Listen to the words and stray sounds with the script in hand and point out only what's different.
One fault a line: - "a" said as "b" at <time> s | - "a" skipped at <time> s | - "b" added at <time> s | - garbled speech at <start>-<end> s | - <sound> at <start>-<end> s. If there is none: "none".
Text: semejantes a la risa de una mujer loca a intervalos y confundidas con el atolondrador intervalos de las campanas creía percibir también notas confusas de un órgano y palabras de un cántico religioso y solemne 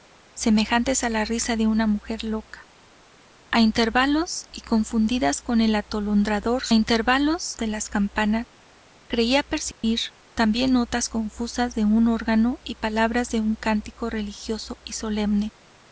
- dropout at 9.7-9.8 s